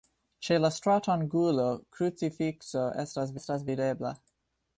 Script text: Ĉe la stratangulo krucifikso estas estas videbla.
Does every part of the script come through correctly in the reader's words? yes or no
yes